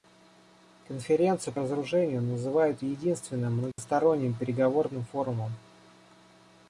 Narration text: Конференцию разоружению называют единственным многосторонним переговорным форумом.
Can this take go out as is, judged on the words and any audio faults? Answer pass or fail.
fail